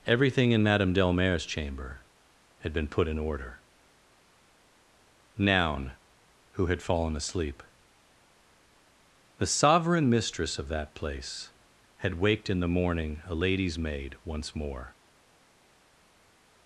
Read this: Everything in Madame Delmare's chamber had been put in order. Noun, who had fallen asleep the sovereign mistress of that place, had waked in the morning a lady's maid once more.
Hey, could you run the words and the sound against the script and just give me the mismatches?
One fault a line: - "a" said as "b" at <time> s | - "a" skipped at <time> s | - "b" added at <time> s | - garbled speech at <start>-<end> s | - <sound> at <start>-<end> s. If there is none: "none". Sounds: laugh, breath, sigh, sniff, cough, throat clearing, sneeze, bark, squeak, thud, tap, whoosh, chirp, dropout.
none